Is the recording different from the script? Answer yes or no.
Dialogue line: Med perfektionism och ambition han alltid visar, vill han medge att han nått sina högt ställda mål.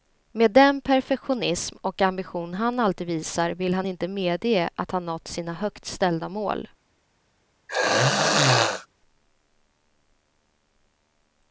yes